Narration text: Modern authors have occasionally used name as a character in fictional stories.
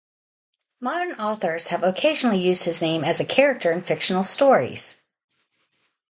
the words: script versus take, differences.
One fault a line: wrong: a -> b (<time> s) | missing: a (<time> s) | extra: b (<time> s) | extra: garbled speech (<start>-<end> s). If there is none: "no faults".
extra: his (2.6 s)